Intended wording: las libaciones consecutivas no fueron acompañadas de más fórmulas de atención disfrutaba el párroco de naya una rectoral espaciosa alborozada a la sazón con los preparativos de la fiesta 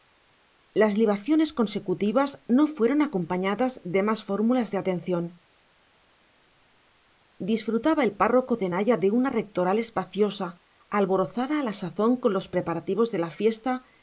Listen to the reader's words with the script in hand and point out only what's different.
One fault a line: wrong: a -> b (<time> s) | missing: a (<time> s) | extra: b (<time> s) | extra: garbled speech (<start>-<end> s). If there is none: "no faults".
extra: de (9.0 s)